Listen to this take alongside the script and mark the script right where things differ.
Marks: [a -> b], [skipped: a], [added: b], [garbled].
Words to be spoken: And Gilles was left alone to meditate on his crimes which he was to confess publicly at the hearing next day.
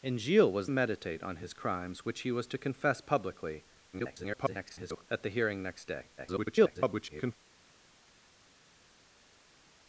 And Gilles was [skipped: left alone to] meditate on his crimes which he was to confess publicly [garbled] at the hearing next day. [garbled]